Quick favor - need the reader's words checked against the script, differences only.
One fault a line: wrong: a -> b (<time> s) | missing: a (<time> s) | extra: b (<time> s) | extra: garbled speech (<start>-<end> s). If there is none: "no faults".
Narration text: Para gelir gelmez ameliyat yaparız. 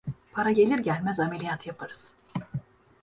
no faults